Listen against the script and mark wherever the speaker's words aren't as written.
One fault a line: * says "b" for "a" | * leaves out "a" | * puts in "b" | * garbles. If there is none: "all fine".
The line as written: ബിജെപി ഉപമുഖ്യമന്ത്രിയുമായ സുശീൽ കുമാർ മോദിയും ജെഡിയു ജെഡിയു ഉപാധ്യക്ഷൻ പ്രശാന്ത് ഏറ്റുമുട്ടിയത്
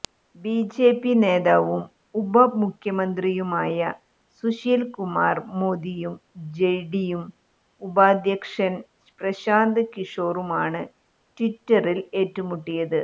* puts in "നേതാവും"
* leaves out "ജെഡിയു"
* puts in "കിഷോറുമാണ് ട്വിറ്ററിൽ"